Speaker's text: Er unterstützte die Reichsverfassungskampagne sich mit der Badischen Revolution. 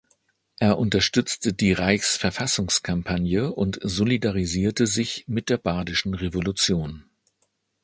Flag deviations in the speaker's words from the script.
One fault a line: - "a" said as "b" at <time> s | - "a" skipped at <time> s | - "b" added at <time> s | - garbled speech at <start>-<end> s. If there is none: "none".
- "und solidarisierte" added at 3.5 s